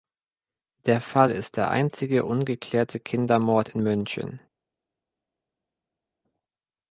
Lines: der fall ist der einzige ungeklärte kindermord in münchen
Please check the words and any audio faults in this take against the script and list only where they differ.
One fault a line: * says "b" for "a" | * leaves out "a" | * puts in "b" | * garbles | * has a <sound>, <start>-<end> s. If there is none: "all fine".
all fine